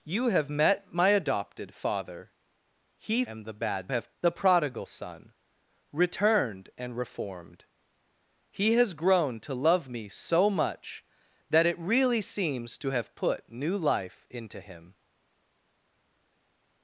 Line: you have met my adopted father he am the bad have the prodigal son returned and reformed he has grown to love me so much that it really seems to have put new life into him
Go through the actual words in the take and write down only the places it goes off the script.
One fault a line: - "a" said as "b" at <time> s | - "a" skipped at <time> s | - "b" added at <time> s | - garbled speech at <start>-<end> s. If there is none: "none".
none